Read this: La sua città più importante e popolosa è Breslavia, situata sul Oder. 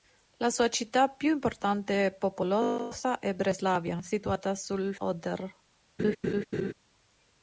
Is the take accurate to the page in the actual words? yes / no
yes